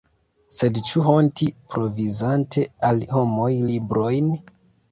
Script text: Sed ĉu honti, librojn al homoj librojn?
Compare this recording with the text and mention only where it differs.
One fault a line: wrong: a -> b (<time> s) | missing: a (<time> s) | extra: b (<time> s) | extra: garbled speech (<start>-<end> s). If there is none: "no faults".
wrong: librojn -> provizante (1.7 s)